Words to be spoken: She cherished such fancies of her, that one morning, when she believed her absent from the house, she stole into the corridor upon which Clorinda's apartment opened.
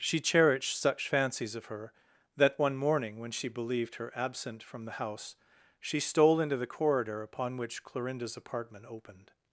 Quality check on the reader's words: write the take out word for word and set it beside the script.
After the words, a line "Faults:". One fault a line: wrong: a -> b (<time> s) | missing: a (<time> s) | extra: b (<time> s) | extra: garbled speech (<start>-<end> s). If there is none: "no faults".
She cherished such fancies of her, that one morning, when she believed her absent from the house, she stole into the corridor upon which Clorinda's apartment opened.
Faults:
no faults